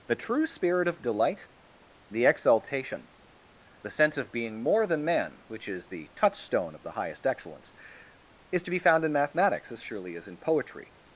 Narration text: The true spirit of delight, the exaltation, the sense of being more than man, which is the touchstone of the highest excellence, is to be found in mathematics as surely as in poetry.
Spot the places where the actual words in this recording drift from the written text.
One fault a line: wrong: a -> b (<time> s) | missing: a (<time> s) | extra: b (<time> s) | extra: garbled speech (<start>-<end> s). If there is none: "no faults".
no faults